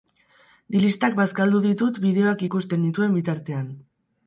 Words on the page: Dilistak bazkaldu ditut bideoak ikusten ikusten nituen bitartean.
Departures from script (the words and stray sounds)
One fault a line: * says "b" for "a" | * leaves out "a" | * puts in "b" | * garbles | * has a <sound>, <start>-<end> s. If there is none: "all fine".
* leaves out "ikusten"